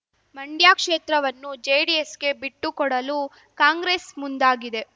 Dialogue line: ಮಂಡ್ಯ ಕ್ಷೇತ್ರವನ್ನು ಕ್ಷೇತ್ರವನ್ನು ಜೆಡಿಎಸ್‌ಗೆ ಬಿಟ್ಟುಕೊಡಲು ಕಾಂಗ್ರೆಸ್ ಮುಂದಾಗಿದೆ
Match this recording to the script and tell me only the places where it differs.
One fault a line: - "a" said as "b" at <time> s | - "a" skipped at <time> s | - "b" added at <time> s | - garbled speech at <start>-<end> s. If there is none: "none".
- "ಕ್ಷೇತ್ರವನ್ನು" skipped at 1.5 s